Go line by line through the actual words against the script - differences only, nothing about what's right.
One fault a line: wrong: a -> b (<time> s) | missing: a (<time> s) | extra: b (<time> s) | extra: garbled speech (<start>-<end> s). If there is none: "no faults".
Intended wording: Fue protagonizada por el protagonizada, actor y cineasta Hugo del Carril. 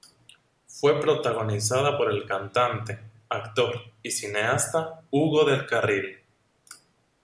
wrong: protagonizada -> cantante (2.3 s)